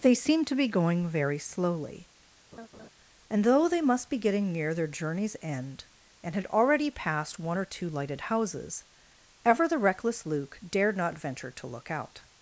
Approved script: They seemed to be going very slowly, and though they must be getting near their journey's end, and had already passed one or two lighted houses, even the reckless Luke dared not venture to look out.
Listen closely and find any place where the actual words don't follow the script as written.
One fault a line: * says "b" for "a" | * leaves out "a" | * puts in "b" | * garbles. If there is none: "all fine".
* says "ever" for "even"